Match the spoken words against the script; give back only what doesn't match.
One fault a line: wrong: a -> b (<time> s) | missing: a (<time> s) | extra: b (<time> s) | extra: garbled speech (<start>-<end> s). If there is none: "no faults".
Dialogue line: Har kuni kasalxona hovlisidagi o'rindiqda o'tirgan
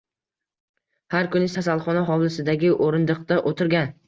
no faults